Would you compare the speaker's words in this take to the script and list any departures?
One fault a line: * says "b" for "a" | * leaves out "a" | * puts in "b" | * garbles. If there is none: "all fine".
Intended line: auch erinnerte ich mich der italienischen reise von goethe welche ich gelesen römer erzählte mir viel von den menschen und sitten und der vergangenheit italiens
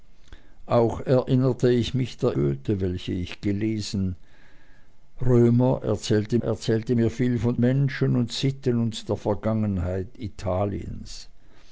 * leaves out "italienischen reise von"
* puts in "erzählte"
* leaves out "den"